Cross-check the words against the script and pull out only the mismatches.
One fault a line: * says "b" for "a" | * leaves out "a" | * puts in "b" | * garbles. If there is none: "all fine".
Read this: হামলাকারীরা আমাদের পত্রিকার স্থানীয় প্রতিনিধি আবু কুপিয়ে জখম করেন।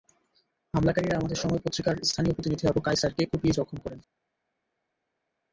* puts in "সময়"
* puts in "কায়সারকে"